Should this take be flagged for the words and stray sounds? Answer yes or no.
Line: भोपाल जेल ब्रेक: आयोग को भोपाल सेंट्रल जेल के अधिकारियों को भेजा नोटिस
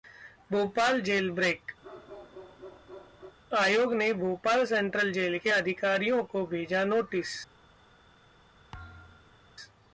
yes